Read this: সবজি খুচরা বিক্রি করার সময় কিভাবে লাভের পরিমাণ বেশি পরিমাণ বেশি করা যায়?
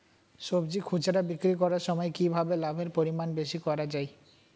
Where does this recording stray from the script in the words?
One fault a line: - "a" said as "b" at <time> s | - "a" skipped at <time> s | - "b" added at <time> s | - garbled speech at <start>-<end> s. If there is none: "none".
- "পরিমাণ বেশি" skipped at 3.6 s